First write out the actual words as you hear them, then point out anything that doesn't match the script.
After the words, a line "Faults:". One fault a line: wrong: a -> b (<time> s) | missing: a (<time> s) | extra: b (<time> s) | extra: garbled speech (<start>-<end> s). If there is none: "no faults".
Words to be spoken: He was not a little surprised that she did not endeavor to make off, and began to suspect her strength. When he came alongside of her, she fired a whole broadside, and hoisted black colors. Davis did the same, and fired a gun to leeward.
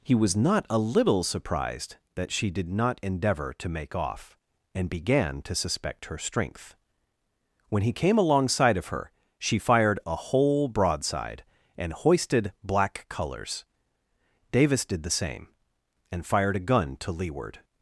He was not a little surprised that she did not endeavor to make off, and began to suspect her strength. When he came alongside of her, she fired a whole broadside, and hoisted black colors. Davis did the same, and fired a gun to leeward.
Faults:
no faults